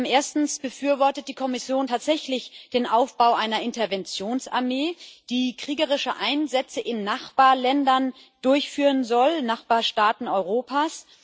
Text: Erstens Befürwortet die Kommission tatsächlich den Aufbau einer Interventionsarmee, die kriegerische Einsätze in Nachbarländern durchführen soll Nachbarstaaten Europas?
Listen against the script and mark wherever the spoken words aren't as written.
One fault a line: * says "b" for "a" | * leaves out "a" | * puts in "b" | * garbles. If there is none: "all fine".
all fine